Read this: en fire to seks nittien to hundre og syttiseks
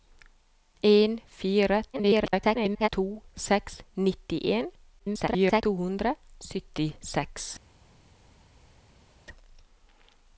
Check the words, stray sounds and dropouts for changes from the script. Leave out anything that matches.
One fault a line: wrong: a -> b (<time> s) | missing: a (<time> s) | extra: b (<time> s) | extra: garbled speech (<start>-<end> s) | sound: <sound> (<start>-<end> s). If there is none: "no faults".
extra: garbled speech (1.9-2.9 s)
extra: garbled speech (5.0-5.6 s)
missing: og (6.1 s)